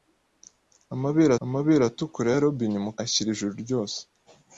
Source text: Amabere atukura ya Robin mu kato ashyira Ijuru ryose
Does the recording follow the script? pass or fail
fail